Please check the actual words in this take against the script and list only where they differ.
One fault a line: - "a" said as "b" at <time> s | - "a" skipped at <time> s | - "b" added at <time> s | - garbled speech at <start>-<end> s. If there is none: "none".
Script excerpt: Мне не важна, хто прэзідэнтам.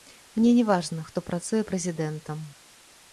- "працуе" added at 1.3 s